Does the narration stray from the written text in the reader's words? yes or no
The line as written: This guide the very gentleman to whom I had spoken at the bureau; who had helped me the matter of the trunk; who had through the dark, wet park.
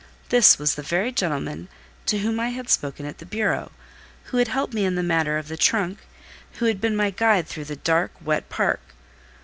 yes